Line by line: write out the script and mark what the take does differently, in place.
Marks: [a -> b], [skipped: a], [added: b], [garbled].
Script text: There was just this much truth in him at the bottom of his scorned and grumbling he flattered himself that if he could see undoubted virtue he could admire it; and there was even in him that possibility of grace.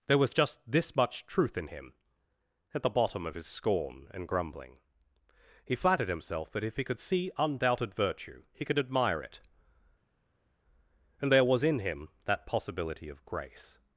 There was just this much truth in him at the bottom of his [scorned -> scorn] and grumbling he flattered himself that if he could see undoubted virtue he could admire it; and there was [skipped: even] in him that possibility of grace.